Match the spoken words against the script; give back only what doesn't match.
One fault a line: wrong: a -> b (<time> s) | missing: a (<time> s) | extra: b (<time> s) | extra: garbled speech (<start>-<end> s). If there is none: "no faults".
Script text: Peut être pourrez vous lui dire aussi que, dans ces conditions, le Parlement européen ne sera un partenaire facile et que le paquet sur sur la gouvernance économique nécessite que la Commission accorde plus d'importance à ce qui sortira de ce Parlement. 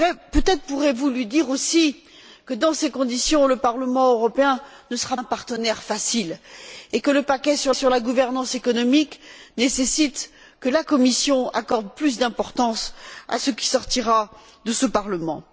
no faults